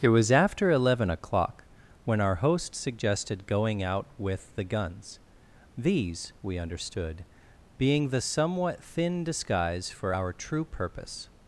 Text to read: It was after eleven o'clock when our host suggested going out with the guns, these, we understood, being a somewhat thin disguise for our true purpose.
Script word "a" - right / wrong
wrong